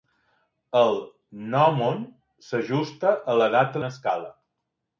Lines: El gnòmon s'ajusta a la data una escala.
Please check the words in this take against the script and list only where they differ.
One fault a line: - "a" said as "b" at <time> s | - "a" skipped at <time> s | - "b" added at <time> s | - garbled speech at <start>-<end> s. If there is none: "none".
none